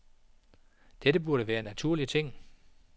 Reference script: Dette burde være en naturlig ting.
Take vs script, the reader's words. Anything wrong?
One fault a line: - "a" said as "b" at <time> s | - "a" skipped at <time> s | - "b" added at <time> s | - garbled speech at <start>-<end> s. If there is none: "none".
none